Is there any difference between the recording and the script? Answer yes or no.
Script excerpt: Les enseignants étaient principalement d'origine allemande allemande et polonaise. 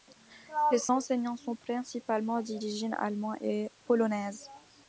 yes